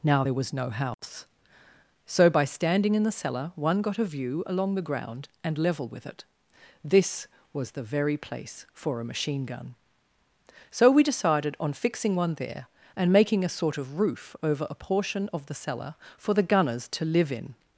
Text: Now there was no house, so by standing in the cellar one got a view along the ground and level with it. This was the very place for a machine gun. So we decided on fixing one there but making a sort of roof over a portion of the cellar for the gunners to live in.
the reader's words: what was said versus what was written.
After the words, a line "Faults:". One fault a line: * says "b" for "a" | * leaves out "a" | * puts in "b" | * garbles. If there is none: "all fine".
Now there was no house, so by standing in the cellar one got a view along the ground and level with it. This was the very place for a machine gun. So we decided on fixing one there and making a sort of roof over a portion of the cellar for the gunners to live in.
Faults:
* says "and" for "but"